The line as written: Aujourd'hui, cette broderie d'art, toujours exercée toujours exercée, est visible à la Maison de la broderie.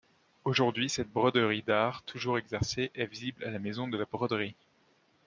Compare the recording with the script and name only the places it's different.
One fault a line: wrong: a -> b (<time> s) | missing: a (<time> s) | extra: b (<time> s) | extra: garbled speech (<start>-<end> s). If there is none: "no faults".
missing: toujours exercée (2.9 s)